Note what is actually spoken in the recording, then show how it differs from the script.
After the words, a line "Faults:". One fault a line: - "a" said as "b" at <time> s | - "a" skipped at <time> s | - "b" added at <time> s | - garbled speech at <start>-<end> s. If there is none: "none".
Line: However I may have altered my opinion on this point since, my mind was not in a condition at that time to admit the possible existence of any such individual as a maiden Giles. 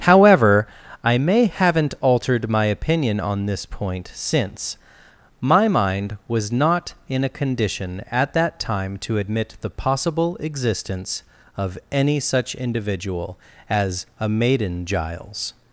However I may haven't altered my opinion on this point since, my mind was not in a condition at that time to admit the possible existence of any such individual as a maiden Giles.
Faults:
- "have" said as "haven't" at 1.4 s